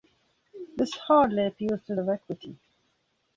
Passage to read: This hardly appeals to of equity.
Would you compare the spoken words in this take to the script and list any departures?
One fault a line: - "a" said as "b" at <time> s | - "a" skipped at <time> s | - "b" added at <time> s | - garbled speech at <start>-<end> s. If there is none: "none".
none